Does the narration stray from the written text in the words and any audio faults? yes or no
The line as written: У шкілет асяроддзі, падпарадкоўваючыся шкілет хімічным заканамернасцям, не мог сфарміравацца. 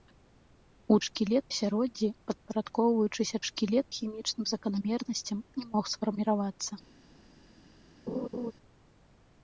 yes